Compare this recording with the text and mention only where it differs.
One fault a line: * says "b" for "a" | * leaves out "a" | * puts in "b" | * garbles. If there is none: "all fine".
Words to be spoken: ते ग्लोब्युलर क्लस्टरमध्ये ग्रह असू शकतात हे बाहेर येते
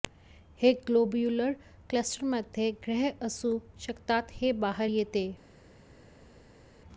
* says "हे" for "ते"